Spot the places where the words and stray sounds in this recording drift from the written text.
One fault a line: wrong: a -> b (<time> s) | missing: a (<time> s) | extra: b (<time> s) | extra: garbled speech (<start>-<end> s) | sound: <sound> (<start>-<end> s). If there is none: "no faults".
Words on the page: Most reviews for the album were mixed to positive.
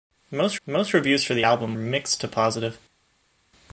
extra: most (0.7 s)
missing: were (1.8 s)